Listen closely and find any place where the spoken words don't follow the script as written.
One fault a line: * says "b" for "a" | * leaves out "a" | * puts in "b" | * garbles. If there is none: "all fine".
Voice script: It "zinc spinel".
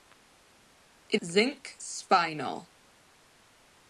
all fine